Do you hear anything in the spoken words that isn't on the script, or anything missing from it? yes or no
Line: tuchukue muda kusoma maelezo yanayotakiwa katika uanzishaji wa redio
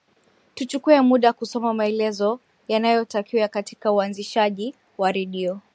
no